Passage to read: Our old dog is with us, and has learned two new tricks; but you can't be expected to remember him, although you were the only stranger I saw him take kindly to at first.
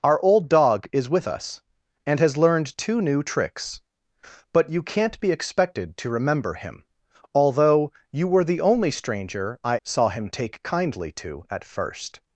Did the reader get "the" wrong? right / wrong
right